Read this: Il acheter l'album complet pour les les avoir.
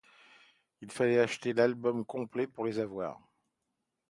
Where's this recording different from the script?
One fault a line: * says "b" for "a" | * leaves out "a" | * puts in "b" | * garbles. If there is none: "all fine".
* puts in "fallait"
* leaves out "les"